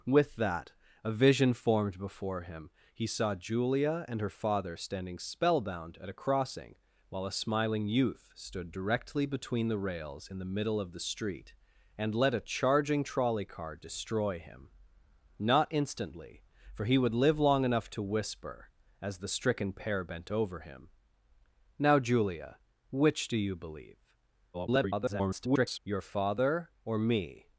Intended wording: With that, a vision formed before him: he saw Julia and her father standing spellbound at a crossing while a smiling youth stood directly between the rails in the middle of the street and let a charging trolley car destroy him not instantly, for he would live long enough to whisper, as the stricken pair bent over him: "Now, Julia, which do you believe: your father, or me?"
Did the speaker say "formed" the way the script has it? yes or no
yes